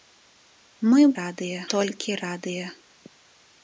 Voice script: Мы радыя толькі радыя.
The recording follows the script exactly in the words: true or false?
true